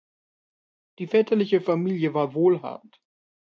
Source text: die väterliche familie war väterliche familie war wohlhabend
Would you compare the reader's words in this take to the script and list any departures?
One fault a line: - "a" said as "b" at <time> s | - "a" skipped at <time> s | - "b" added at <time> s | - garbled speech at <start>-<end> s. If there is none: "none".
- "väterliche familie war" skipped at 2.3 s